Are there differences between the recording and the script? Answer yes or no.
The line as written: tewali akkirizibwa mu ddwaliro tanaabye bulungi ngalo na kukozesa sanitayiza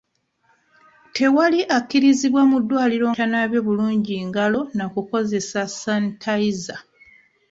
no